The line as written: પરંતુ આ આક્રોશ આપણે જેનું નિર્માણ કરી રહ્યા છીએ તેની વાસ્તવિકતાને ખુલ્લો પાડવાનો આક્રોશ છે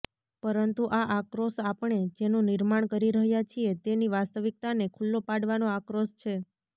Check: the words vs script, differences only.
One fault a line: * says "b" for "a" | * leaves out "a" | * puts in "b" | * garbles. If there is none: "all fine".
all fine